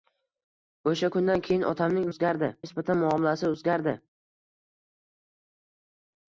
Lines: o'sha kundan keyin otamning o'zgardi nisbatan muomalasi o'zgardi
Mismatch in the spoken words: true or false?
false